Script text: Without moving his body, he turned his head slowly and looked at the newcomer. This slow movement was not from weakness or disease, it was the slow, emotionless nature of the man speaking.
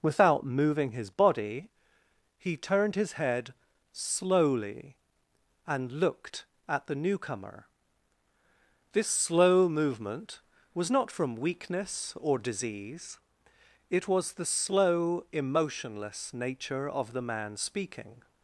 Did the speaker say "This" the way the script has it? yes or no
yes